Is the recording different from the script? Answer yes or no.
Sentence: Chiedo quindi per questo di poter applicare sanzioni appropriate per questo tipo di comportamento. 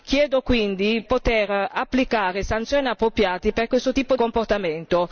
yes